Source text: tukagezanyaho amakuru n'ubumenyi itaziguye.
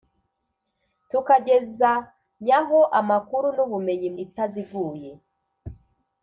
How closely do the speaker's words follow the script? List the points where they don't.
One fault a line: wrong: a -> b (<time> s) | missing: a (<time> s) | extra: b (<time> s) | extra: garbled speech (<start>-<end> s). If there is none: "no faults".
no faults